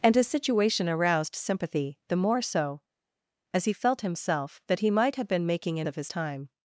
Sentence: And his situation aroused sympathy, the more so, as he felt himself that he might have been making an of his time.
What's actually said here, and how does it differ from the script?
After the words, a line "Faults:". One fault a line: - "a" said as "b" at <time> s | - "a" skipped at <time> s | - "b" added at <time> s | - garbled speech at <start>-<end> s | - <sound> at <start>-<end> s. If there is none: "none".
And his situation aroused sympathy, the more so, as he felt himself that he might have been making an of his time.
Faults:
none